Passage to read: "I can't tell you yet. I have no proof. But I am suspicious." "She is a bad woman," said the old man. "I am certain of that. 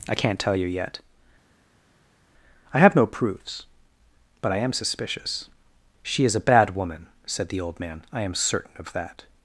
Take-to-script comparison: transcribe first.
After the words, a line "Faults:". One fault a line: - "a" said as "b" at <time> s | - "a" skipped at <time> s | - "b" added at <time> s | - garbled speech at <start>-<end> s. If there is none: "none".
"I can't tell you yet. I have no proofs. But I am suspicious." "She is a bad woman," said the old man. "I am certain of that.
Faults:
- "proof" said as "proofs" at 3.1 s